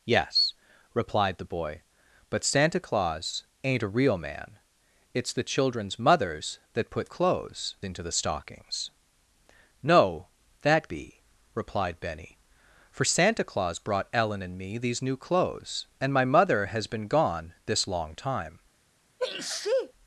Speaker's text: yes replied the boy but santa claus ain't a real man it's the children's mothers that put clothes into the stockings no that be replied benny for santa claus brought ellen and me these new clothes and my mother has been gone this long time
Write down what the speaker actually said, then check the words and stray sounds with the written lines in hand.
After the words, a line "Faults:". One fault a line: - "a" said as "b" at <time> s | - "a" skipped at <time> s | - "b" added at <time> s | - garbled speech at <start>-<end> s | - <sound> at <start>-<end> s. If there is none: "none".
yes replied the boy but santa claus ain't a real man it's the children's mothers that put clothes into the stockings no that be replied benny for santa claus brought ellen and me these new clothes and my mother has been gone this long time
Faults:
- sneeze at 19.2-19.9 s